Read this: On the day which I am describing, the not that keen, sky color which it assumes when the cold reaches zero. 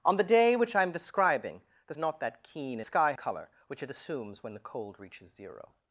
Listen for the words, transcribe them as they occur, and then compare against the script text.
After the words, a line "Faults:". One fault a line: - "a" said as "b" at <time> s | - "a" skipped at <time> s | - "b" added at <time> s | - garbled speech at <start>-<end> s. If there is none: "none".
On the day which I am describing, the not that keen, sky color which it assumes when the cold reaches zero.
Faults:
none